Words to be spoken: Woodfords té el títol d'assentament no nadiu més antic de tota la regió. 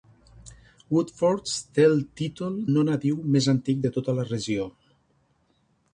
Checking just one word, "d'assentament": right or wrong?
wrong